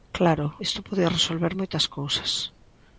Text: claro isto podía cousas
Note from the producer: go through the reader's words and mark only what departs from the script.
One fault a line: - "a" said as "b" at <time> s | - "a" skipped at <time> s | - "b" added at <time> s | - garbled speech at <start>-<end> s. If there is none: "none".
- "resolver moitas" added at 1.2 s